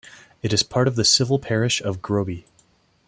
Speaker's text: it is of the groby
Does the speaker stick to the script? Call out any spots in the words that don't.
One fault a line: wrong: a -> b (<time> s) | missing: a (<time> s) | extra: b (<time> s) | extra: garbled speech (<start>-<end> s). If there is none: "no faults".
extra: part (0.6 s)
extra: civil parish of (1.0 s)